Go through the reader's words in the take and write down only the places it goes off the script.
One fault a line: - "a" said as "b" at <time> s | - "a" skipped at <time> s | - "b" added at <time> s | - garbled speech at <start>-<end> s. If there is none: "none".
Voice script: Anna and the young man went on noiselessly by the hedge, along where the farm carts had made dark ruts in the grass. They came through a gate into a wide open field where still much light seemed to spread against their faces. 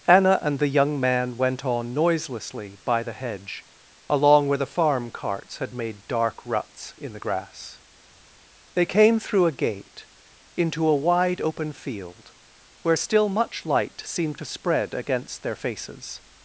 none